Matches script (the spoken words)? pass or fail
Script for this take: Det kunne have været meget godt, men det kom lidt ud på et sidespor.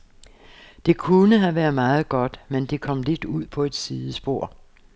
pass